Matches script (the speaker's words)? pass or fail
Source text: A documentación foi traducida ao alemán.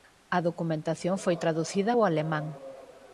pass